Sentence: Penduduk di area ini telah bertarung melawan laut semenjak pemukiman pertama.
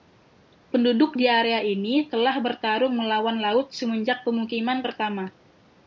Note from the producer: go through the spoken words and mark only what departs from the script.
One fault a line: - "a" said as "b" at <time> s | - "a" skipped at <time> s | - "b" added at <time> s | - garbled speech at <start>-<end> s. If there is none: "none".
none